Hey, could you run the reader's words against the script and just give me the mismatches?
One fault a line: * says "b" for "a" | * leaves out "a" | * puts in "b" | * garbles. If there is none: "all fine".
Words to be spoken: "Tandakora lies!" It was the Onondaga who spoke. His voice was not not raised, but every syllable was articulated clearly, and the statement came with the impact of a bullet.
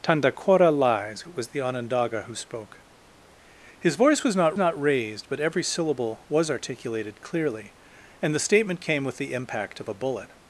all fine